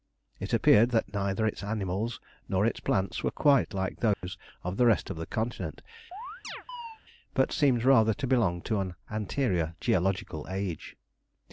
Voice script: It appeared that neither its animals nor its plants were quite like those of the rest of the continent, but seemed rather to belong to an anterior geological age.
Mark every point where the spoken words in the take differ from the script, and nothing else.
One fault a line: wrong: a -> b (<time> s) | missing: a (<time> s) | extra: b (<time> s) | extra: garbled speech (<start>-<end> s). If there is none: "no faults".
no faults